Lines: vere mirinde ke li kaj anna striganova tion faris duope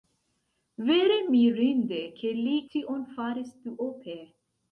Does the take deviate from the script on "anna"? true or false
true